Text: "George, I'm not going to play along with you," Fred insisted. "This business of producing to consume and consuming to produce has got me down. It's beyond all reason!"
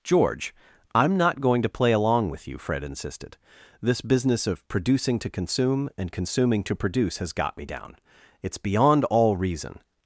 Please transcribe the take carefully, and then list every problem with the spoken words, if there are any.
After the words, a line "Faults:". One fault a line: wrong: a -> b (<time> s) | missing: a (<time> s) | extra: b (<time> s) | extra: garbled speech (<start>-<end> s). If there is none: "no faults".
"George, I'm not going to play along with you," Fred insisted. "This business of producing to consume and consuming to produce has got me down. It's beyond all reason!"
Faults:
no faults